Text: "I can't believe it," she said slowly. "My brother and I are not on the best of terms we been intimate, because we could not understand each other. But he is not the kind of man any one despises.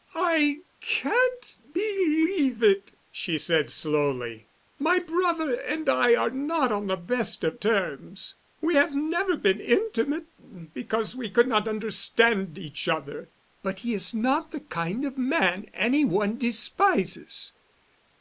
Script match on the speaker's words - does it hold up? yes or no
no